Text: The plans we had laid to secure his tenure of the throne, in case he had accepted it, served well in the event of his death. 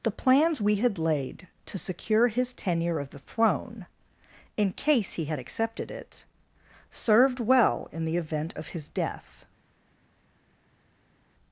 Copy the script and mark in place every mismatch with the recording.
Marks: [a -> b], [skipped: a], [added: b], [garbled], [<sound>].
The plans we had laid to secure his tenure of the throne, in case he had accepted it, served well in the event of his death.